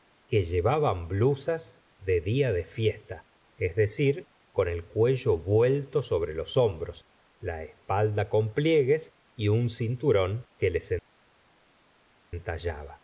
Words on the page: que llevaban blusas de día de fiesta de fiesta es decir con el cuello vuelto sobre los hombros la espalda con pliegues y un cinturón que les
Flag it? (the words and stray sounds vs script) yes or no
yes